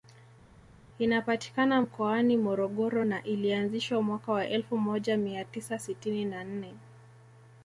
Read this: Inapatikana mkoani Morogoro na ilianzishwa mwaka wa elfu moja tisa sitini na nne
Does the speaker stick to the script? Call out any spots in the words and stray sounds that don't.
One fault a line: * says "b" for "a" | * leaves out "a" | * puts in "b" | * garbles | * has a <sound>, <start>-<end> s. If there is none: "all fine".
* puts in "mia"